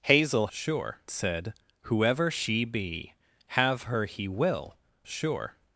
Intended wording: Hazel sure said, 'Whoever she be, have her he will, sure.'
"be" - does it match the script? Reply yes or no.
yes